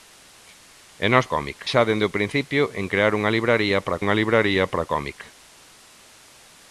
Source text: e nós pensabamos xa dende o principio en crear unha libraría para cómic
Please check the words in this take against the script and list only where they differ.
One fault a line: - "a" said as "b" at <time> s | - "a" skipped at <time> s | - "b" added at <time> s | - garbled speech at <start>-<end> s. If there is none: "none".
- "pensabamos" said as "cómic" at 1.3 s
- "unha libraría para" added at 4.0 s